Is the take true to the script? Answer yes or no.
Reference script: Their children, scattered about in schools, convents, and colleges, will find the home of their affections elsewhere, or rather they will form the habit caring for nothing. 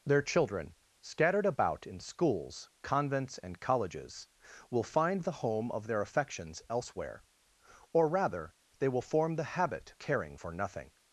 yes